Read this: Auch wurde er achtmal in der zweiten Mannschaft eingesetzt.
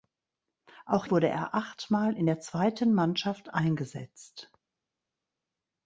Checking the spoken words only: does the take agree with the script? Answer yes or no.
yes